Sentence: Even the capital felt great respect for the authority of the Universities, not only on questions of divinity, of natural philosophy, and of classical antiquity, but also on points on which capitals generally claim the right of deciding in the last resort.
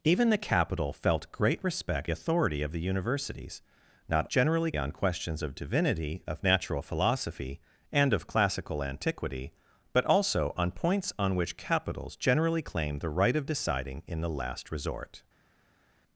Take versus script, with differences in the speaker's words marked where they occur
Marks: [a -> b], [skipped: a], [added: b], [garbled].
Even the capital felt great respect [skipped: for the] authority of the Universities, not [only -> generally] on questions of divinity, of natural philosophy, and of classical antiquity, but also on points on which capitals generally claim the right of deciding in the last resort.